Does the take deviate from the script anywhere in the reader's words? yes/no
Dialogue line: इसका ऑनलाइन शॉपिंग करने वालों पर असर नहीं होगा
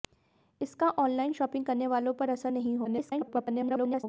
yes